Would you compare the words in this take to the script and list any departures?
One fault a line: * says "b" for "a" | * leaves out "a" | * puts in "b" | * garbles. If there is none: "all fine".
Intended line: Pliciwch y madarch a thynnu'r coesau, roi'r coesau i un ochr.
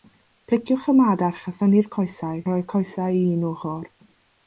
all fine